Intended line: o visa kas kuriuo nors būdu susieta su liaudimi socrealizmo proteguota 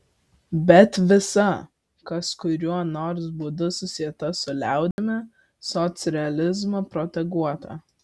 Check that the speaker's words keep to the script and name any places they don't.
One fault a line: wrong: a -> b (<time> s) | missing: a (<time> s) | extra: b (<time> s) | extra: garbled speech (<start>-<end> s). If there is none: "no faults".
wrong: o -> bet (0.7 s)